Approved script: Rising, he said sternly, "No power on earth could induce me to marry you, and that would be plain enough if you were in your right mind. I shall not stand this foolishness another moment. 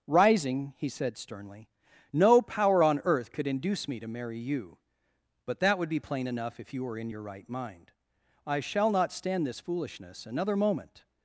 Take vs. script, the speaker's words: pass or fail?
fail